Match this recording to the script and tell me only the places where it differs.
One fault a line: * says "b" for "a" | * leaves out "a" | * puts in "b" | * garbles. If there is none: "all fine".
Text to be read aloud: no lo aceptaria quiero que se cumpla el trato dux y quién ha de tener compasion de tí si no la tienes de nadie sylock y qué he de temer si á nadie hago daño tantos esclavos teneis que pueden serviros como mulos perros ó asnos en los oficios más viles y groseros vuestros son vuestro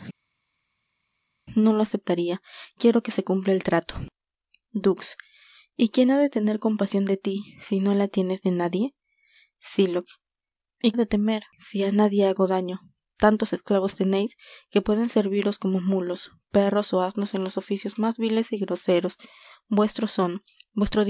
* leaves out "qué"